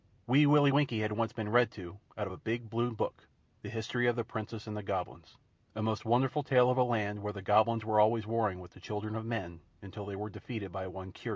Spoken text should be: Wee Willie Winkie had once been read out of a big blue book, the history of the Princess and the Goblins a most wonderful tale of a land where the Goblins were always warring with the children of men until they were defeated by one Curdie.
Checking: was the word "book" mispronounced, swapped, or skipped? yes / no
no